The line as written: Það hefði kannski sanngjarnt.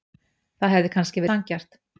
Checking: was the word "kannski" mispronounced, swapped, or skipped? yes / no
no